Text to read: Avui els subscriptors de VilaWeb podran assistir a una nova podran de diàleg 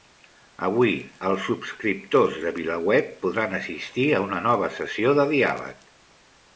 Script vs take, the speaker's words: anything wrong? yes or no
yes